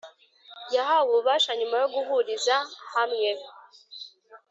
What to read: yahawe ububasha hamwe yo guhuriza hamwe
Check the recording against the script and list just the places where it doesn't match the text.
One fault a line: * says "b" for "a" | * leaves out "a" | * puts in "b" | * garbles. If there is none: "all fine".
* says "nyuma" for "hamwe"